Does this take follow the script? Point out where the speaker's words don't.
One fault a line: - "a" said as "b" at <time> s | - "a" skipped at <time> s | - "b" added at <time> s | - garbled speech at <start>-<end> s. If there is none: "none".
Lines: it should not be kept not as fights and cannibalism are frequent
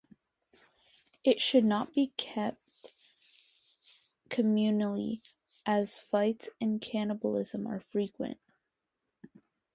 - "not" said as "communally" at 4.3 s